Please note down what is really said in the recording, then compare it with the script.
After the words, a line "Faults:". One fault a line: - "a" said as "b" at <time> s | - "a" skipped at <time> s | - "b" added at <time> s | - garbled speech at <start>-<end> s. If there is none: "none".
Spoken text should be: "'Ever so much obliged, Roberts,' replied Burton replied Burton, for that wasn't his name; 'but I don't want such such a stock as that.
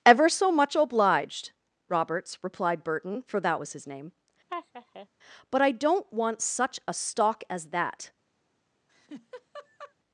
"'Ever so much obliged, Roberts,' replied Burton, for that was his name; 'but I don't want such a stock as that.
Faults:
- "replied Burton" skipped at 3.2 s
- "wasn't" said as "was" at 3.6 s
- "such" skipped at 6.8 s